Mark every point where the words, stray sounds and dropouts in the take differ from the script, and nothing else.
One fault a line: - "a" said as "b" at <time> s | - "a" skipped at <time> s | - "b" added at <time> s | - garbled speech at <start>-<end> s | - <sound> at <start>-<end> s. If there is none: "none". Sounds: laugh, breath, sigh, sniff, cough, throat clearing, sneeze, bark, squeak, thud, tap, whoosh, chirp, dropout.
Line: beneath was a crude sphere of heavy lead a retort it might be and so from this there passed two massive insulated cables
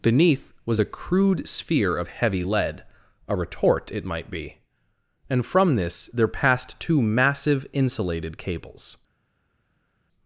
- "so" skipped at 5.5 s